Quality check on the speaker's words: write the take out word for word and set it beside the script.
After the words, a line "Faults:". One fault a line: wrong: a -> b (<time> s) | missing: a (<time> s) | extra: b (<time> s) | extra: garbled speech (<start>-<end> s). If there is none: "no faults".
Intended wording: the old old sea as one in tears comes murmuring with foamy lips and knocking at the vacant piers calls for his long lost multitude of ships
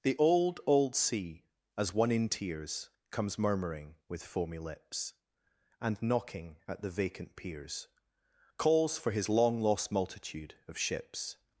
the old old sea as one in tears comes murmuring with foamy lips and knocking at the vacant piers calls for his long lost multitude of ships
Faults:
no faults